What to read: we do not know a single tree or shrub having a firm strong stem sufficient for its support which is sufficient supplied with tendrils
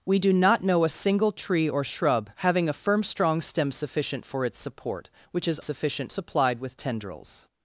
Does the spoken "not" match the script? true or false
true